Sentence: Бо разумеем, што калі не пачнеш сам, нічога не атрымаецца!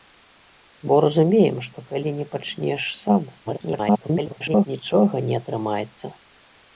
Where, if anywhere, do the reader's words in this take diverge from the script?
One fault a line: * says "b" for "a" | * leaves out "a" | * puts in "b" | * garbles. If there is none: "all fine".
* garbles